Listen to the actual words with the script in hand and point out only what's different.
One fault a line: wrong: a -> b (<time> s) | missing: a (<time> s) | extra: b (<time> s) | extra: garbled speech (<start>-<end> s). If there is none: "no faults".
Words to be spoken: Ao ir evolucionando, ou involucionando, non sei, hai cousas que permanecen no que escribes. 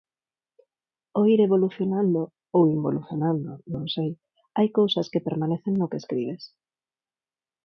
no faults